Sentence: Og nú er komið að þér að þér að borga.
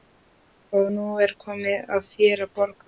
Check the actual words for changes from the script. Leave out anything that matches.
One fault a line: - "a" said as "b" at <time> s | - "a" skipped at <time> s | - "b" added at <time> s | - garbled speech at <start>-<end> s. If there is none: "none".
- "þér að" skipped at 2.6 s